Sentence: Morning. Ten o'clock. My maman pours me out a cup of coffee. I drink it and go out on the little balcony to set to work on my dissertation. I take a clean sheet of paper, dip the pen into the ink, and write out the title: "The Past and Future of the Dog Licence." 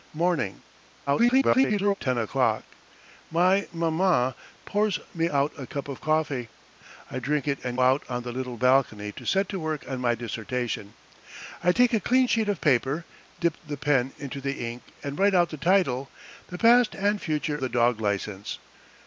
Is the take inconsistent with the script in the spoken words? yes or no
yes